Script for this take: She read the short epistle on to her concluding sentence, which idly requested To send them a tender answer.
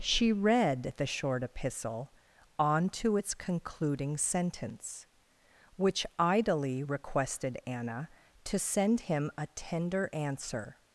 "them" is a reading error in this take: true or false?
true